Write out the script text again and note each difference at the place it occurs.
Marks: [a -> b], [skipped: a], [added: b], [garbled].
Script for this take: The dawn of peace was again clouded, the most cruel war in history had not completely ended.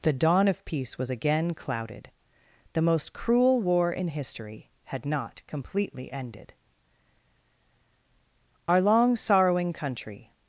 The dawn of peace was again clouded, the most cruel war in history had not completely ended. [added: Our long sorrowing country]